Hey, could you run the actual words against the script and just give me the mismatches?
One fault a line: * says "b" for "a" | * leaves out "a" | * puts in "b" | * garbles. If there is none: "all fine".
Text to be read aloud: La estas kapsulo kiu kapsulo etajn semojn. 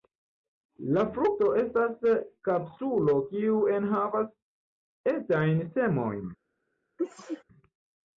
* puts in "frukto"
* says "enhavas" for "kapsulo"